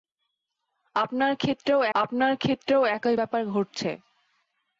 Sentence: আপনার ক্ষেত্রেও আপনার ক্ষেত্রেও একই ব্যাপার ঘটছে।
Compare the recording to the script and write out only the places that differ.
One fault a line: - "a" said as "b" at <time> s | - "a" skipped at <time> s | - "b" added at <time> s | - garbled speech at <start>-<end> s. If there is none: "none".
none